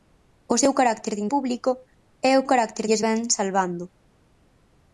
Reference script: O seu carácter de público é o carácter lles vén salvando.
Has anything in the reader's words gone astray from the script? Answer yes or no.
no